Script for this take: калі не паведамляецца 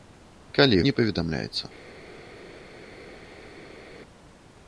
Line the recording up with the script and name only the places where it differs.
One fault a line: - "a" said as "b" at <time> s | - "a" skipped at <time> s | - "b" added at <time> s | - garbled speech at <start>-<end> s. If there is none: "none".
none